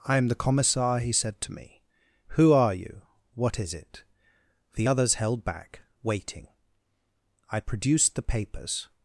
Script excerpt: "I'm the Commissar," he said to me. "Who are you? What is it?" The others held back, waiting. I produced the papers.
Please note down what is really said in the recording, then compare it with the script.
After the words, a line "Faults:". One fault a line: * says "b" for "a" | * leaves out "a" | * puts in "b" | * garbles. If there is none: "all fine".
"I'm the Commissar," he said to me. "Who are you? What is it?" The others held back, waiting. I produced the papers.
Faults:
all fine